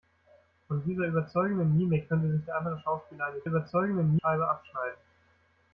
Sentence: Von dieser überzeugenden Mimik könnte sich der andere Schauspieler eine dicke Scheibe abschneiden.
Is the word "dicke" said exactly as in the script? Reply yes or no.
no